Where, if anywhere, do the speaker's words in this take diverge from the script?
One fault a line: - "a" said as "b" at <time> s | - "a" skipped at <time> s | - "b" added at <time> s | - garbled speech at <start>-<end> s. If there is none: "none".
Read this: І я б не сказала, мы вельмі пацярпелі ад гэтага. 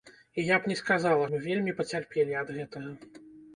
none